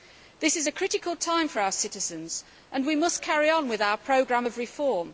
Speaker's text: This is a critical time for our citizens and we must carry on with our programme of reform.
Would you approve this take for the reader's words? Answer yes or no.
yes